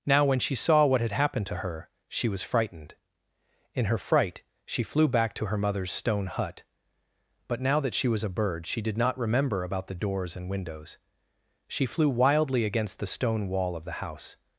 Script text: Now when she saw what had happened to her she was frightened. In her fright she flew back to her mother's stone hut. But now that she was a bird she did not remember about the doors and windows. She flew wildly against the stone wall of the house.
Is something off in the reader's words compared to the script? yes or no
no